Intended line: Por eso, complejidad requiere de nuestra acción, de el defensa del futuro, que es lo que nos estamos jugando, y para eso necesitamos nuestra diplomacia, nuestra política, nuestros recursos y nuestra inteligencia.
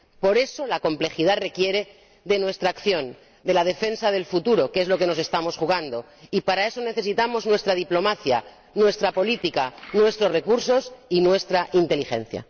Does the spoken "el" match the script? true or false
false